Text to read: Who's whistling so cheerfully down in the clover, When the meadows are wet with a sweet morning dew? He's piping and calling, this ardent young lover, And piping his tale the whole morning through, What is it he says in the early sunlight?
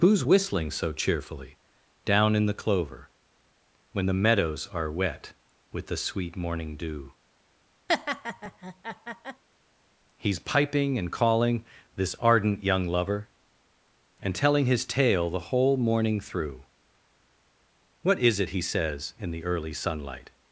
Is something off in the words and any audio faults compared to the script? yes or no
yes